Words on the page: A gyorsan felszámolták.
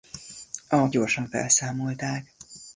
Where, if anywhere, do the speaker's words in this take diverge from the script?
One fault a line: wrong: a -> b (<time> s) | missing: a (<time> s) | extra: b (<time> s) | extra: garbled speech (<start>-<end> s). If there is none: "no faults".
no faults